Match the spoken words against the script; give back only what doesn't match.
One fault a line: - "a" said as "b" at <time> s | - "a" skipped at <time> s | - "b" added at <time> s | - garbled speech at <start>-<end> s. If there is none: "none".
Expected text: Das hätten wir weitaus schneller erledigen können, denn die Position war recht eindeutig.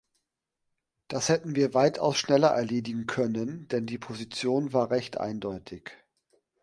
none